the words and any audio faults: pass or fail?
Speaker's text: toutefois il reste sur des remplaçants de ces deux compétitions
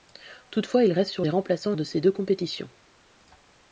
pass